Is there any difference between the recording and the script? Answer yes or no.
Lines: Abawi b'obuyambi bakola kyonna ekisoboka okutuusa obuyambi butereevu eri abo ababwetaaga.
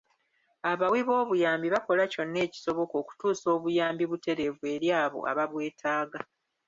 no